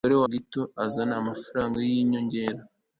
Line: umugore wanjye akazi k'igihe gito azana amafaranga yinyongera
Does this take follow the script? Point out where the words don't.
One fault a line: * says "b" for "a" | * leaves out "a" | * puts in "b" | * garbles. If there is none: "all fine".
* leaves out "wanjye akazi k'igihe"